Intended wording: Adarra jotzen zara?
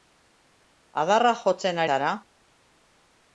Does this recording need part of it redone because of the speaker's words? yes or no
no